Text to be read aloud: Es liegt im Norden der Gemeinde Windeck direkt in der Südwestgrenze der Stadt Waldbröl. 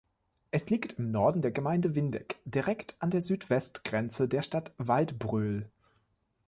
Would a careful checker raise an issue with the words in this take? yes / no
yes